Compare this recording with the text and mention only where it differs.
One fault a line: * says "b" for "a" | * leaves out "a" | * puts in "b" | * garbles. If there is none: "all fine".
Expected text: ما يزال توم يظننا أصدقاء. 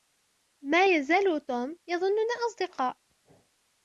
all fine